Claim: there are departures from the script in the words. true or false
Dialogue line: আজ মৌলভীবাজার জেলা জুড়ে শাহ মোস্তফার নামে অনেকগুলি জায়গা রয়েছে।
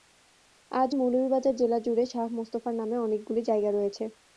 false